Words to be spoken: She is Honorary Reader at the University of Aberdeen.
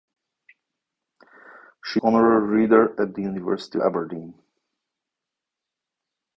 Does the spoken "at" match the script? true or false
true